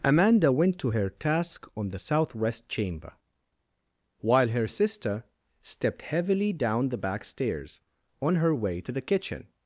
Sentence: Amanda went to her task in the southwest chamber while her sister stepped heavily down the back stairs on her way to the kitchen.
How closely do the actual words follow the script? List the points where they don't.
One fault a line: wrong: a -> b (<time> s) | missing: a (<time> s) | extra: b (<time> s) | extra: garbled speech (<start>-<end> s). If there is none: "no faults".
wrong: in -> on (1.7 s)